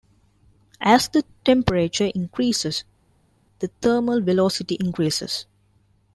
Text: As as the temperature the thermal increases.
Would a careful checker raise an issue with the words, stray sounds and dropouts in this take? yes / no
yes